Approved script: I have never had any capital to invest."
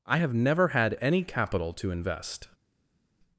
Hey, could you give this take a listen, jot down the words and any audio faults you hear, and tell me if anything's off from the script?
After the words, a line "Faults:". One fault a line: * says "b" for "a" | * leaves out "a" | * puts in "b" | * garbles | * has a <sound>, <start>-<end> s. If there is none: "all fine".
I have never had any capital to invest."
Faults:
all fine